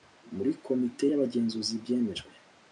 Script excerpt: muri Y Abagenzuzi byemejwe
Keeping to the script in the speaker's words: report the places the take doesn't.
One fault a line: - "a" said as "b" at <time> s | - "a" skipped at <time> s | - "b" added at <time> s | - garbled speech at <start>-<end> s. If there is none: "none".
- "Komite" added at 0.7 s